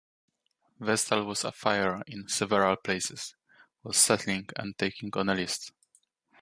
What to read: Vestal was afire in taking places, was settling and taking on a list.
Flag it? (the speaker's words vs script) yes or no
yes